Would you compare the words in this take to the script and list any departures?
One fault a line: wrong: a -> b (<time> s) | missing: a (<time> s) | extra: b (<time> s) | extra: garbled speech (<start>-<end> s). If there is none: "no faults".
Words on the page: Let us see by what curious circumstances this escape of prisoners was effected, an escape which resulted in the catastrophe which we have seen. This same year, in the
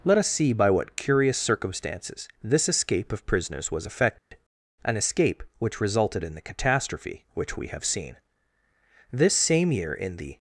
no faults